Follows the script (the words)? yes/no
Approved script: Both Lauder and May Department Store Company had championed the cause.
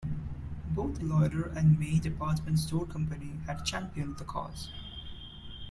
yes